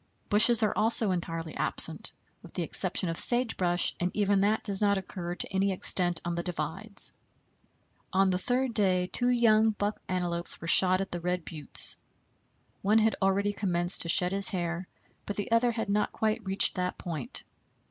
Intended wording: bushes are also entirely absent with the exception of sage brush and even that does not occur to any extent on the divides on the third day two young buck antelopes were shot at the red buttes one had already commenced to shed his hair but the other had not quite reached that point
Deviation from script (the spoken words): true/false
false